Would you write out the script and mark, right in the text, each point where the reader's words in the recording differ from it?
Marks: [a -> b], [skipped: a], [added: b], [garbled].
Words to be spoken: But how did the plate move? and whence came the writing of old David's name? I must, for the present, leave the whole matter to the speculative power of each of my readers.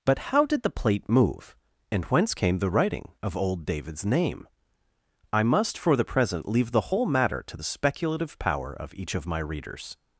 But how did the plate move? and whence came the writing of old David's name? I must, for the present, leave the whole matter to the speculative power of each of my readers.